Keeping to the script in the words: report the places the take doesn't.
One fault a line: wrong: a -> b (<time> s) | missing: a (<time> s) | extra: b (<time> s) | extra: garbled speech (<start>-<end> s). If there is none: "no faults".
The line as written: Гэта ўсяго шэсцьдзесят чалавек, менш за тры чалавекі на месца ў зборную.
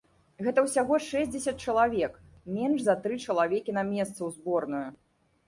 no faults